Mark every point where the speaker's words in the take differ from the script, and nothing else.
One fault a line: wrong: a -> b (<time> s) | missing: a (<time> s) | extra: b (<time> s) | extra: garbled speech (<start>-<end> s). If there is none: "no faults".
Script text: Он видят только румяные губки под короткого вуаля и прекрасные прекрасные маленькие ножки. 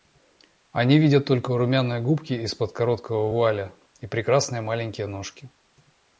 wrong: Он -> Они (0.7 s)
extra: из (2.3 s)
missing: прекрасные (4.6 s)